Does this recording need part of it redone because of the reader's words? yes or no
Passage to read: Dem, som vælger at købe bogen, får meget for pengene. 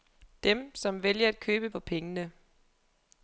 yes